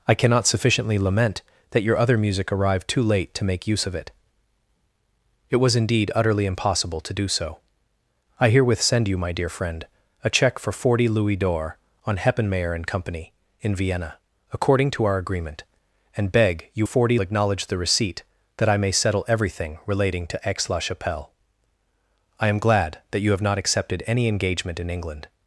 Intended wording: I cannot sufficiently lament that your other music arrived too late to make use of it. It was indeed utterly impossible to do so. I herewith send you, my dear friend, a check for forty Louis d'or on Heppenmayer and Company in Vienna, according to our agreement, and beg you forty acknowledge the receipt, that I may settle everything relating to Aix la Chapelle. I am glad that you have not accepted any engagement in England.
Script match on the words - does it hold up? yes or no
yes